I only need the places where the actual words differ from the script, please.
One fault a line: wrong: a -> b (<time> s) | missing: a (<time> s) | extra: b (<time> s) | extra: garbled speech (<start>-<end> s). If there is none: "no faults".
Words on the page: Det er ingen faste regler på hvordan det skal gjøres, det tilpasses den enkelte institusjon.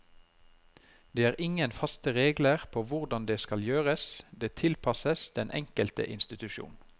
no faults